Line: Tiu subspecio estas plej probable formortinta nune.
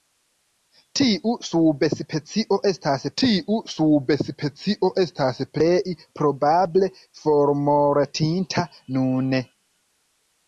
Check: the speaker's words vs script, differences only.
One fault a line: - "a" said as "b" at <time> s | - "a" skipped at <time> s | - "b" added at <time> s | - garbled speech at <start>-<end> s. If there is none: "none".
- "tiu subspecio estas" added at 3.2 s